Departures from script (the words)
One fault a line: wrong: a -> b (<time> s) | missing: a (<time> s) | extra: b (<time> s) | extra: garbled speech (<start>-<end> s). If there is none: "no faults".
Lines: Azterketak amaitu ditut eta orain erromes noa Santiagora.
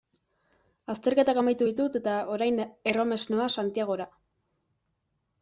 no faults